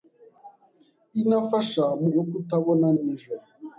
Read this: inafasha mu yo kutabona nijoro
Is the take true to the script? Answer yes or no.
yes